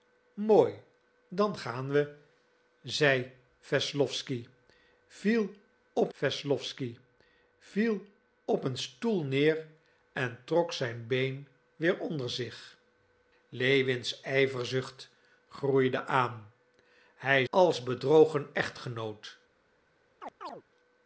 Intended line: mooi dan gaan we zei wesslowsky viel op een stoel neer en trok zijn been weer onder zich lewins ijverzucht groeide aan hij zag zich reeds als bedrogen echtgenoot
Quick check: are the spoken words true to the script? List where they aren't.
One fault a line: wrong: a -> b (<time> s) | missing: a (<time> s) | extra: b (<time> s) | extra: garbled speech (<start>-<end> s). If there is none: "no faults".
extra: wesslowsky viel op (6.2 s)
missing: zag zich reeds (17.5 s)